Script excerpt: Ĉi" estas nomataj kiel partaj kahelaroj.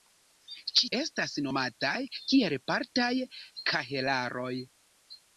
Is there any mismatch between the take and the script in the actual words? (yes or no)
no